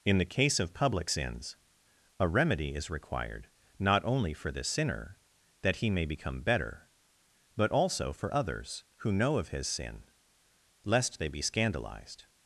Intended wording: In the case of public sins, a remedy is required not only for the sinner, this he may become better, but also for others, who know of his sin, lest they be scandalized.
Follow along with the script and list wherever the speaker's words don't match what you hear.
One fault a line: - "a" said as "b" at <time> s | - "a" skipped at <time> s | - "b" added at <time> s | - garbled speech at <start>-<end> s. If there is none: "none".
- "this" said as "that" at 5.6 s